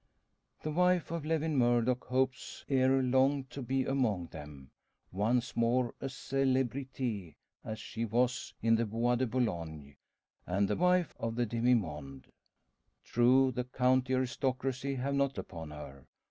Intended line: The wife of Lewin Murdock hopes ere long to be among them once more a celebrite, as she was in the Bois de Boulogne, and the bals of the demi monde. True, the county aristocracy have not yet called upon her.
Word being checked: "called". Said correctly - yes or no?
no